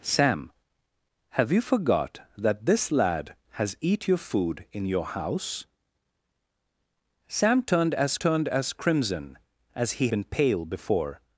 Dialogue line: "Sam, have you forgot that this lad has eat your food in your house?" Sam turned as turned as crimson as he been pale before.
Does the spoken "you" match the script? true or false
true